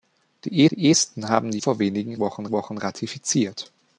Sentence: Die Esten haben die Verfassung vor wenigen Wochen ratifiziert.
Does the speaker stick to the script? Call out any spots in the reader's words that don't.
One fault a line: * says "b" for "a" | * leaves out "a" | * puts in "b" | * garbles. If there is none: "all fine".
* puts in "die"
* leaves out "Verfassung"
* puts in "Wochen"